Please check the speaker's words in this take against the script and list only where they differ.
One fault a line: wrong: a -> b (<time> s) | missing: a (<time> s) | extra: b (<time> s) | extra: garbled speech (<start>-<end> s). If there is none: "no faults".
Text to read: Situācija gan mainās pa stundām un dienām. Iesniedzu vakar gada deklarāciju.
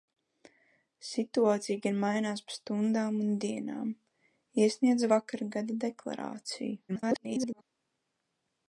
extra: garbled speech (6.9-7.6 s)